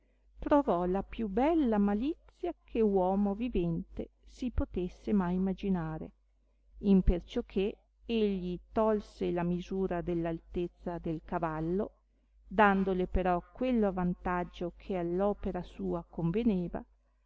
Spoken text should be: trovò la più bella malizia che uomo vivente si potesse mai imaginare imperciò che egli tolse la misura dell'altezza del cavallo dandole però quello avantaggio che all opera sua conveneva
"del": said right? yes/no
yes